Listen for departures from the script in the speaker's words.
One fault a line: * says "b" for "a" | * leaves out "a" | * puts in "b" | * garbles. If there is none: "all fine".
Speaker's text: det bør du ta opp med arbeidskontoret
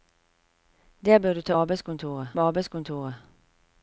* says "arbeidskontoret" for "opp"